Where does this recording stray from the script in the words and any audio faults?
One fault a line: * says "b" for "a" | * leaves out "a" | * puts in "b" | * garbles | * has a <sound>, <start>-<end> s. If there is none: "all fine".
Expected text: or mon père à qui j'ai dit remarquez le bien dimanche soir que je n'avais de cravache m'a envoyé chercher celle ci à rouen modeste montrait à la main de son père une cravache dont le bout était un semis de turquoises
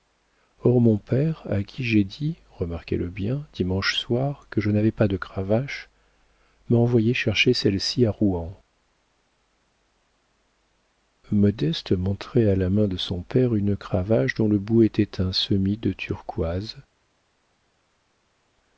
* puts in "pas"